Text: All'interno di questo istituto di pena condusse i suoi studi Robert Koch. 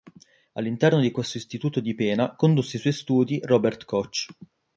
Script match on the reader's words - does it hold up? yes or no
yes